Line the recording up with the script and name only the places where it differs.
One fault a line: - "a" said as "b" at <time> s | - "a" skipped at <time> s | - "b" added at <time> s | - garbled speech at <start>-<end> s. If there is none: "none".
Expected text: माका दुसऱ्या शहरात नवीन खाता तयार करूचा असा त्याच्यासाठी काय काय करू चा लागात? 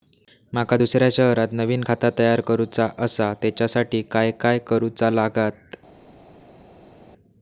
none